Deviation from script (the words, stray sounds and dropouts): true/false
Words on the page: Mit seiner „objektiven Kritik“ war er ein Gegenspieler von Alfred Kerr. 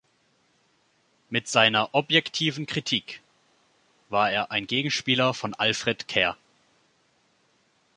false